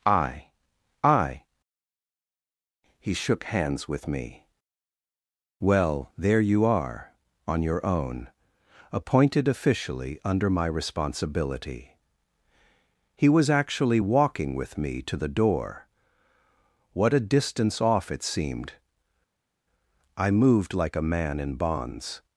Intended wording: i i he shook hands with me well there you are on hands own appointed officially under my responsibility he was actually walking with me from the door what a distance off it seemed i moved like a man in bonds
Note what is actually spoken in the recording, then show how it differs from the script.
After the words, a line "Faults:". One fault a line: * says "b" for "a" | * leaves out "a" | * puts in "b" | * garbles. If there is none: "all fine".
i i he shook hands with me well there you are on your own appointed officially under my responsibility he was actually walking with me to the door what a distance off it seemed i moved like a man in bonds
Faults:
* says "your" for "hands"
* says "to" for "from"